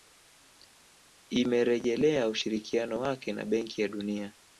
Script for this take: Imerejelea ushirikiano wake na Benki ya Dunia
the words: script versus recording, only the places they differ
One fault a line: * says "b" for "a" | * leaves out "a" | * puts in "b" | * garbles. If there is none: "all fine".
all fine